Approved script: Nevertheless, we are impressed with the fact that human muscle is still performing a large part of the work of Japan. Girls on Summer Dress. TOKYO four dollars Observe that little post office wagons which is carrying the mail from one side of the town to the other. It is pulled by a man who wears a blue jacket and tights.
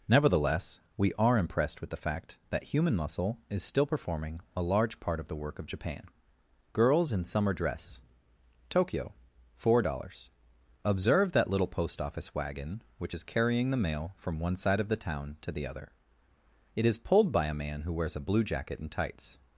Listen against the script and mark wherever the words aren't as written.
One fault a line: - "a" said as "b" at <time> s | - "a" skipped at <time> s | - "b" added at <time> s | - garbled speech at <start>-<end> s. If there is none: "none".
- "on" said as "in" at 7.1 s
- "wagons" said as "wagon" at 12.3 s